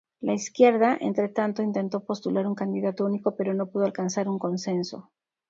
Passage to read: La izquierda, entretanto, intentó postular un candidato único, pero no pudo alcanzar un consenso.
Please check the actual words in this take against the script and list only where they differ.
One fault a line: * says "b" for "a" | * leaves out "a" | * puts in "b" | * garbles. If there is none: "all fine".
all fine